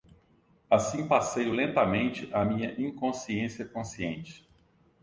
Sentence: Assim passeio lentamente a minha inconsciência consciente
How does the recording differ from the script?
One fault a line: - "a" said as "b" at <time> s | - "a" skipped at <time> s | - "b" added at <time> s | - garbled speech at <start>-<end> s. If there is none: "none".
none